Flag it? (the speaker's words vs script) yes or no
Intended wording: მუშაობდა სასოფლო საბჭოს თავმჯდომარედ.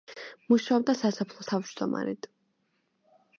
yes